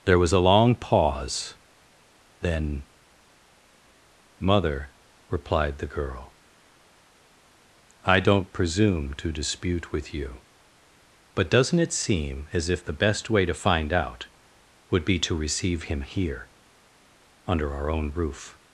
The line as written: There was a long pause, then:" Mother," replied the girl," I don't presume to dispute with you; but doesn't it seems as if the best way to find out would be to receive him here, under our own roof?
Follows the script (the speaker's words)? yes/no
no